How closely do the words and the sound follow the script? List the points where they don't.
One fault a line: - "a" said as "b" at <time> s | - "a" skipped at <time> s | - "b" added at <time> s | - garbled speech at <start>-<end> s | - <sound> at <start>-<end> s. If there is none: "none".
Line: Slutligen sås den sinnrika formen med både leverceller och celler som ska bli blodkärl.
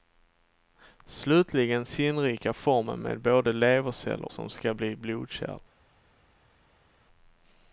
- "sås den" skipped at 1.9 s
- "och celler" skipped at 4.3 s